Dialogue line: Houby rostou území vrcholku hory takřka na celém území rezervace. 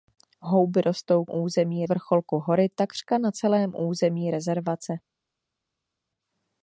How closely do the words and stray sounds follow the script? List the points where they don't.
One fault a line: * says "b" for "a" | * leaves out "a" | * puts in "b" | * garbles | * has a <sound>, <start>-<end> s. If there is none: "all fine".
all fine